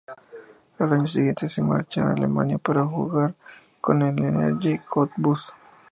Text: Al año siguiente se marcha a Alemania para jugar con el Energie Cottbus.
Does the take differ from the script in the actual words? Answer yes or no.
no